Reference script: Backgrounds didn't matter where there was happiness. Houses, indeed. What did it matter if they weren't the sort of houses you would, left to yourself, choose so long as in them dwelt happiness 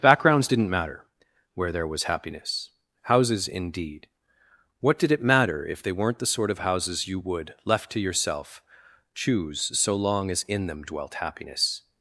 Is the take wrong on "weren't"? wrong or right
right